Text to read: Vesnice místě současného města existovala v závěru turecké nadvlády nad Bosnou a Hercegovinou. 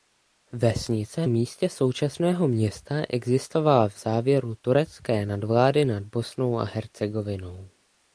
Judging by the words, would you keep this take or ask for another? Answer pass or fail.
pass